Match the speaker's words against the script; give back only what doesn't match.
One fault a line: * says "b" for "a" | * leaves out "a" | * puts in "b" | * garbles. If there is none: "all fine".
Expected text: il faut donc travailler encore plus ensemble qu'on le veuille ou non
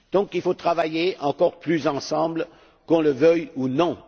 all fine